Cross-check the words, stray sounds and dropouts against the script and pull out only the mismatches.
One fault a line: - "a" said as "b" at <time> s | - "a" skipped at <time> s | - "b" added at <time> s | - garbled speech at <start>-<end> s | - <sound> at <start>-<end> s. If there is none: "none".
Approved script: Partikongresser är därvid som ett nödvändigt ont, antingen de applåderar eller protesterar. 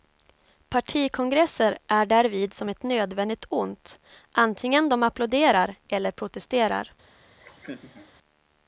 - laugh at 7.4-8.1 s